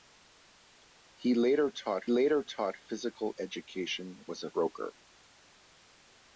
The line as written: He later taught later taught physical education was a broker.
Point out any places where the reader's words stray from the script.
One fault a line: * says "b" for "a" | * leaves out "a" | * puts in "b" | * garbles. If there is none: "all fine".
all fine